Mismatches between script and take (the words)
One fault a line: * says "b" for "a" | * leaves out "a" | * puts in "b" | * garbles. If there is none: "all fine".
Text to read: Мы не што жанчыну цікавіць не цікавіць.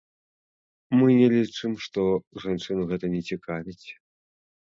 * puts in "лічым"
* says "гэта" for "цікавіць"